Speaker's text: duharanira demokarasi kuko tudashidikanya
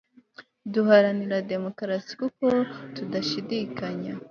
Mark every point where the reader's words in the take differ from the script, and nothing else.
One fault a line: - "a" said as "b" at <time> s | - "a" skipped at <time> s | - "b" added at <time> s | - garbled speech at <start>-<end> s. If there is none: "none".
none